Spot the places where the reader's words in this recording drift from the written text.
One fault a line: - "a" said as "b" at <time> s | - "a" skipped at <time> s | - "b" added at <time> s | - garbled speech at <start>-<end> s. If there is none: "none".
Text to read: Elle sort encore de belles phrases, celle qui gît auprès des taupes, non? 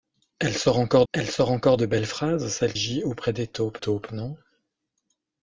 - "elle sort encore" added at 1.1 s
- "qui" skipped at 2.7 s
- "taupes" added at 3.8 s